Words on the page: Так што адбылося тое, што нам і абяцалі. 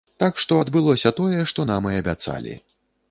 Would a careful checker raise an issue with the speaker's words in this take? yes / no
no